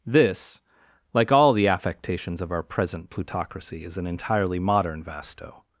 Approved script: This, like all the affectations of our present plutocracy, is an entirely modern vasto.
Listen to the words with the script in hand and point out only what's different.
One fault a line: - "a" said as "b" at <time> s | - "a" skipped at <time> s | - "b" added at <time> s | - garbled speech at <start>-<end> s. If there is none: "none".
none